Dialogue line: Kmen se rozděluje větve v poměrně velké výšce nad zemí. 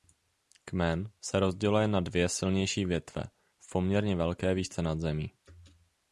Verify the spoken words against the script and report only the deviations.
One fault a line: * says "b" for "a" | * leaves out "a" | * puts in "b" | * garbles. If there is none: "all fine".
* puts in "na dvě silnější"